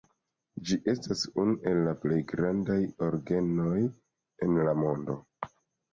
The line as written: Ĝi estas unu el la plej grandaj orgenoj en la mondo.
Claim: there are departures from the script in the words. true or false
false